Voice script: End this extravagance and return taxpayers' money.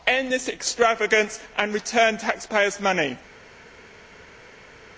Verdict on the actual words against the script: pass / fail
pass